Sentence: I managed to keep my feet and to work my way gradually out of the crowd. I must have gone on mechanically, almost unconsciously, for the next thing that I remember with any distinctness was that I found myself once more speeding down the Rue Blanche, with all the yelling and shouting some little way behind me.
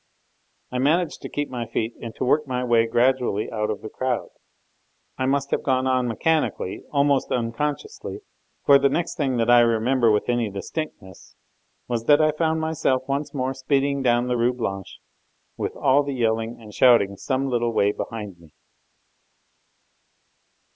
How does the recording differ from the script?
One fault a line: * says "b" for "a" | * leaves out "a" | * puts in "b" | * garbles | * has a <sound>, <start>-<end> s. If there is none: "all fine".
all fine